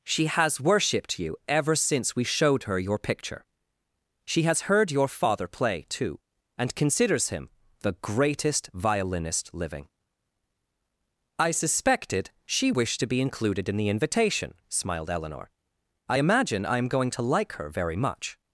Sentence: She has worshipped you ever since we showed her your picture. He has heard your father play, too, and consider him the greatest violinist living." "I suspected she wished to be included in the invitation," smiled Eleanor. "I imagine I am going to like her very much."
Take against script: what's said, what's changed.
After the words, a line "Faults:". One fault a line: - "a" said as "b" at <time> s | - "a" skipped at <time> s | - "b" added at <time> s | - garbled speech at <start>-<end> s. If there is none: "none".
She has worshipped you ever since we showed her your picture. She has heard your father play, too, and considers him the greatest violinist living." "I suspected she wished to be included in the invitation," smiled Eleanor. "I imagine I am going to like her very much."
Faults:
- "He" said as "She" at 4.2 s
- "consider" said as "considers" at 6.8 s